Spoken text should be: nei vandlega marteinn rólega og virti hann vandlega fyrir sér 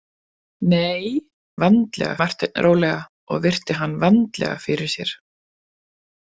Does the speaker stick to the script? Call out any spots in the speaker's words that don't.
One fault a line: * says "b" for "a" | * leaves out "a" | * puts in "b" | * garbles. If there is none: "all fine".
all fine